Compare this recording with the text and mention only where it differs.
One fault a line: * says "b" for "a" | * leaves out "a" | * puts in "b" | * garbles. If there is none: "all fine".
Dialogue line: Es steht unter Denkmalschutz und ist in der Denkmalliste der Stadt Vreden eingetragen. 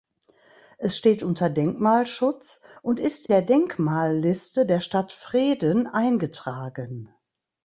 * leaves out "in"